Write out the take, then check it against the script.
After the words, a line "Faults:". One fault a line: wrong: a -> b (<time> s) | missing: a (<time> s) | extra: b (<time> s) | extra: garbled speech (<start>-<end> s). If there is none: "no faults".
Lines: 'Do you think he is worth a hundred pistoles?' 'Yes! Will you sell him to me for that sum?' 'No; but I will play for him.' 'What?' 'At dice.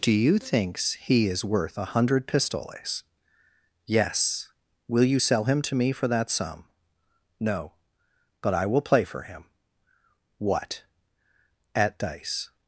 'Do you thinks he is worth a hundred pistoles?' 'Yes! Will you sell him to me for that sum?' 'No; but I will play for him.' 'What?' 'At dice.
Faults:
wrong: think -> thinks (0.4 s)